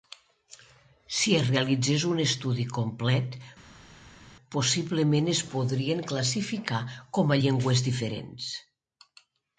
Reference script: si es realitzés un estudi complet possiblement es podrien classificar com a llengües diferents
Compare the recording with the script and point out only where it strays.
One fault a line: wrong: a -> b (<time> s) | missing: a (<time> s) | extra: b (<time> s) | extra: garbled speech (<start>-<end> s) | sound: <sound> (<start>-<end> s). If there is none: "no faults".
no faults